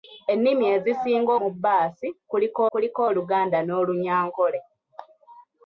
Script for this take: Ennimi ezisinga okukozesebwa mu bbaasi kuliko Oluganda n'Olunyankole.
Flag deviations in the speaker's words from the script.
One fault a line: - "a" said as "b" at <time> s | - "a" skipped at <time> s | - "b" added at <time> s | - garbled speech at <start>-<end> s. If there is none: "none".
- "okukozesebwa" skipped at 1.3 s
- "kuliko" added at 2.7 s